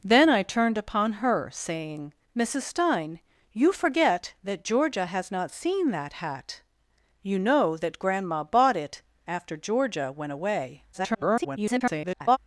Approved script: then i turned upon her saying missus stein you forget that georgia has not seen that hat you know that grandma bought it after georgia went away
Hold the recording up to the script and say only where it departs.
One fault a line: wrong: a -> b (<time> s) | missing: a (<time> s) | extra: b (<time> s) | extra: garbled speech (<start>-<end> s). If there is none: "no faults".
extra: garbled speech (10.9-12.4 s)